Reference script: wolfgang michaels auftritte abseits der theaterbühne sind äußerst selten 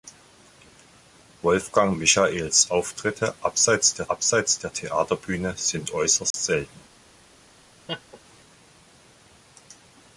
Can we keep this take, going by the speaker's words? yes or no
no